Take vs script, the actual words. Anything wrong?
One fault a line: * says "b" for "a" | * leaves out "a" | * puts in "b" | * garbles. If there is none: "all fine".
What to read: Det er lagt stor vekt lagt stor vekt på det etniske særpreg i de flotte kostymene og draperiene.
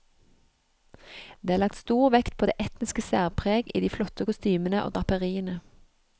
* leaves out "lagt stor vekt"